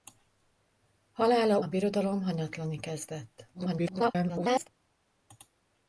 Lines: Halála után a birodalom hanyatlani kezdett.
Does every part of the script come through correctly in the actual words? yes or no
no